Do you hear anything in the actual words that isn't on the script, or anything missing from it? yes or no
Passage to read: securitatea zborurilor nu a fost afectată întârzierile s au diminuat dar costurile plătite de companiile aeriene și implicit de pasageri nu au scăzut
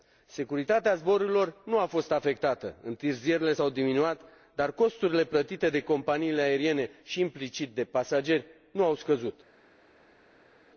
no